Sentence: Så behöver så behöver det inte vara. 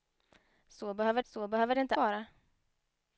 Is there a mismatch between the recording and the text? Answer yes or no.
no